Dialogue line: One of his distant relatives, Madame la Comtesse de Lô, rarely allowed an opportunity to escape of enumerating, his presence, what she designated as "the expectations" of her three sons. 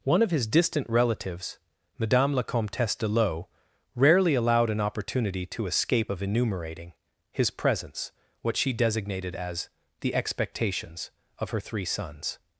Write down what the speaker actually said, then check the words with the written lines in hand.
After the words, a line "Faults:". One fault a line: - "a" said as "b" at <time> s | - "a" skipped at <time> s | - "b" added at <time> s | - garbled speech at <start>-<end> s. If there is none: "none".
One of his distant relatives, Madame la Comtesse de Lô, rarely allowed an opportunity to escape of enumerating, his presence, what she designated as "the expectations" of her three sons.
Faults:
none